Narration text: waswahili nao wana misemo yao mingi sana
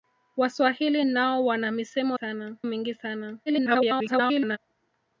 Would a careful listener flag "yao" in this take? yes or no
yes